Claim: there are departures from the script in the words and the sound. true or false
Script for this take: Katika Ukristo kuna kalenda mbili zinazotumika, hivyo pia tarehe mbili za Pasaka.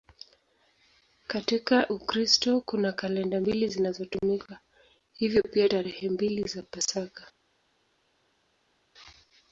false